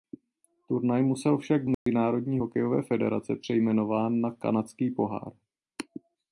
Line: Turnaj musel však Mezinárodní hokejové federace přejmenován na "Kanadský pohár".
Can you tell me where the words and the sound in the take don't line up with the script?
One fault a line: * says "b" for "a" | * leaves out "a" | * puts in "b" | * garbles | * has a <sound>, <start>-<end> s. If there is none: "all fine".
* has a dropout, 1.7-1.9 s